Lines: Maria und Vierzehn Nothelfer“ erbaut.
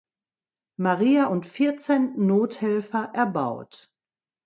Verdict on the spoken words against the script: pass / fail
pass